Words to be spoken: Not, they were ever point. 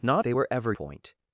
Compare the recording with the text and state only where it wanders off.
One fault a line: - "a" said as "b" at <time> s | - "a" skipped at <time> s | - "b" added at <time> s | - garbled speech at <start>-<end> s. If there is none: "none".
none